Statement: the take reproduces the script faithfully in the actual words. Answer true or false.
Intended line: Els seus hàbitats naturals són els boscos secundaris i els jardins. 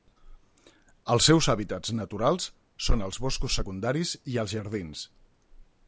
true